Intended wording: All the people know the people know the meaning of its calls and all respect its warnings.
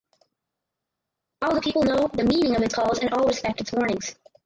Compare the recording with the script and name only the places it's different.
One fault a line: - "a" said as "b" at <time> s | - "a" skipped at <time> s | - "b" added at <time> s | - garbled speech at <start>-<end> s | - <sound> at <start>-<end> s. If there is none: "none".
- "people know the" skipped at 2.2 s